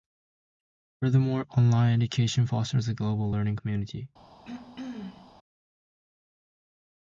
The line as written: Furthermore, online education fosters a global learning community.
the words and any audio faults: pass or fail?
fail